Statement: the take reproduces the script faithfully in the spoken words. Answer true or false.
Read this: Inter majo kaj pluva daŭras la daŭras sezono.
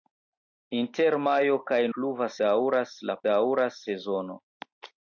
true